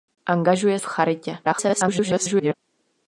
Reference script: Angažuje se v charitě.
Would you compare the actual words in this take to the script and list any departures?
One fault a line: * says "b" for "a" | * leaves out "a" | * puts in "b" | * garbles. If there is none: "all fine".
* leaves out "se"
* garbles